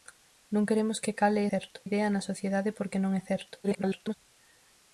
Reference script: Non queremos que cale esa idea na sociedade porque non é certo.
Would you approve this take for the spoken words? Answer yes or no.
no